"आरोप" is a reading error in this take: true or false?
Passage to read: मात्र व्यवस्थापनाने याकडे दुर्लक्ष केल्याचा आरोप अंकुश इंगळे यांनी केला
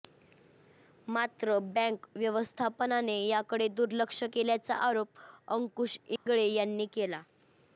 false